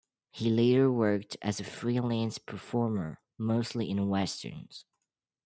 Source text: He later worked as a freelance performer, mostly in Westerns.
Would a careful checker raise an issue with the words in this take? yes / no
no